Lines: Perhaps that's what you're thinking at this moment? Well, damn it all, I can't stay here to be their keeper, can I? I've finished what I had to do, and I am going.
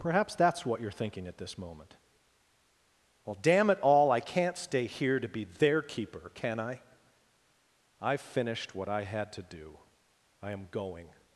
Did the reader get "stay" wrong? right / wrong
right